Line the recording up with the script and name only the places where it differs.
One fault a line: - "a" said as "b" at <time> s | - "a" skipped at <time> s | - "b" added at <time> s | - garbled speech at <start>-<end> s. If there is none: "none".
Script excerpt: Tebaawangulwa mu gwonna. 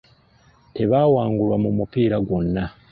- "mupiira" added at 1.8 s